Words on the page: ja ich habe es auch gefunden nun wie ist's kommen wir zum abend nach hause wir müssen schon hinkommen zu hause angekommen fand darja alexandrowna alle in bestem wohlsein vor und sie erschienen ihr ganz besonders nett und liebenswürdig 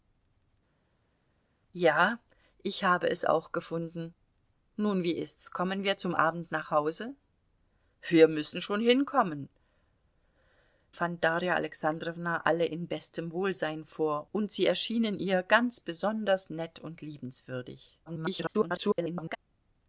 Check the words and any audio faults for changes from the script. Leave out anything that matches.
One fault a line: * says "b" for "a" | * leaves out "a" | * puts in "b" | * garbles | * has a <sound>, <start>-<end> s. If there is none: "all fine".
* leaves out "zu hause angekommen"
* garbles